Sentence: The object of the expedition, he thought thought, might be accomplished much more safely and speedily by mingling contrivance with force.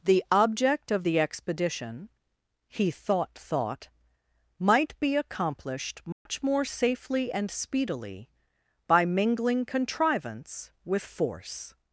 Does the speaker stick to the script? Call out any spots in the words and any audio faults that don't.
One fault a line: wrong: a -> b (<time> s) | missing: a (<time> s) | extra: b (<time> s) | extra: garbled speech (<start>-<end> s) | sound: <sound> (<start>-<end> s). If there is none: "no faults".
sound: dropout (6.1-6.3 s)